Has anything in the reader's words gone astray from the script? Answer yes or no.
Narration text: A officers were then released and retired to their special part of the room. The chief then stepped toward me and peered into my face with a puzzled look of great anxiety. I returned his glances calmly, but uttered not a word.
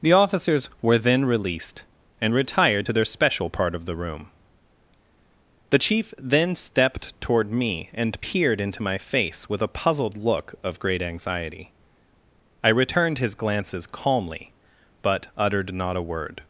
yes